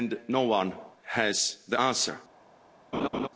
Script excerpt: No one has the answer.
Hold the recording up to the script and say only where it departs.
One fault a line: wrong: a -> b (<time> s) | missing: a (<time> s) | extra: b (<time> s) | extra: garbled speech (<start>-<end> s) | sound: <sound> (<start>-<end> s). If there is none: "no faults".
sound: laugh (2.9-3.3 s)